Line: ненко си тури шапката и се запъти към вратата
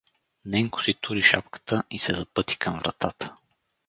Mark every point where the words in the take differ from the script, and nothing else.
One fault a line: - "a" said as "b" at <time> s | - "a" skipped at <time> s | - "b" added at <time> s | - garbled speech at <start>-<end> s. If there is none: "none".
none